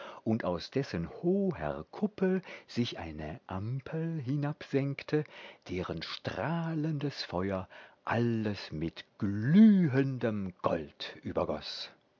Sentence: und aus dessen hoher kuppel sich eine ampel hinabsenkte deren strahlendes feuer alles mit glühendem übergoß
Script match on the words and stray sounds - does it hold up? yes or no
no